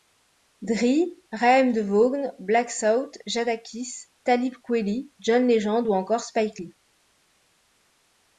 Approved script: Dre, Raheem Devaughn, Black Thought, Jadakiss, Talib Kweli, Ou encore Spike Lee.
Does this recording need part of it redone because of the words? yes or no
yes